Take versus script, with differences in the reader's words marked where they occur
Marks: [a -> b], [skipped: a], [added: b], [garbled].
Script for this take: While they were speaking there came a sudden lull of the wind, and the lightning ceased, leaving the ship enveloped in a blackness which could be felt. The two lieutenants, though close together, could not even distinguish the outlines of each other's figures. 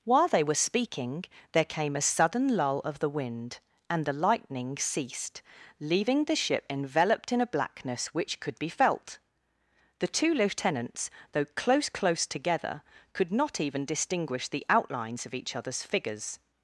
While they were speaking there came a sudden lull of the wind, and the lightning ceased, leaving the ship enveloped in a blackness which could be felt. The two lieutenants, though close [added: close] together, could not even distinguish the outlines of each other's figures.